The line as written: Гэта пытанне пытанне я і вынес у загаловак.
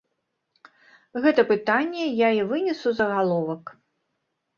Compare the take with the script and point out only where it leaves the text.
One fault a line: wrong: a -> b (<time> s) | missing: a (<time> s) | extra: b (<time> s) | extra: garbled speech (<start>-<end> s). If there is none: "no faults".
missing: пытанне (2.0 s)